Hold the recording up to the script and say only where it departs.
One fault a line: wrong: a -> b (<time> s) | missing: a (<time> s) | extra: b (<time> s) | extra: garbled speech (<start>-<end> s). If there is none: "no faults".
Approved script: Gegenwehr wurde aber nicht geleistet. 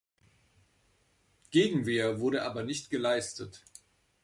no faults